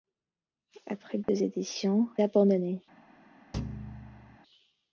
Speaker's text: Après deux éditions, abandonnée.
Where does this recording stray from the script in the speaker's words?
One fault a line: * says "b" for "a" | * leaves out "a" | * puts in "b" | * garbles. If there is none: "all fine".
all fine